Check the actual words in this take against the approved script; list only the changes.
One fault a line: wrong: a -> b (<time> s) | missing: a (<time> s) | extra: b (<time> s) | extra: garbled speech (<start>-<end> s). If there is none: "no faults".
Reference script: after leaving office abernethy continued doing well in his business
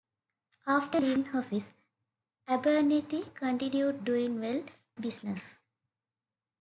missing: in his (4.6 s)